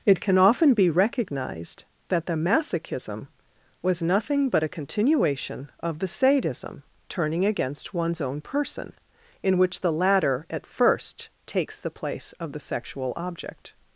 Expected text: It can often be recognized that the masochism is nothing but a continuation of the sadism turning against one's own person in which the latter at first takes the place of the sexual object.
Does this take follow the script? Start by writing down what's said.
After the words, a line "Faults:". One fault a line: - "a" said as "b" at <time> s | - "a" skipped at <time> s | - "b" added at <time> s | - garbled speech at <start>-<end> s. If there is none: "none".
It can often be recognized that the masochism was nothing but a continuation of the sadism turning against one's own person in which the latter at first takes the place of the sexual object.
Faults:
- "is" said as "was" at 3.8 s